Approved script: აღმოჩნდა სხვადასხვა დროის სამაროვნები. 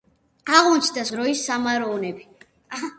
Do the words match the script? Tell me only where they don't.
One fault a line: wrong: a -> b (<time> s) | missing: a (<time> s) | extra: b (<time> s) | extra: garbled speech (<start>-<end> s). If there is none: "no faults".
missing: სხვადასხვა (1.0 s)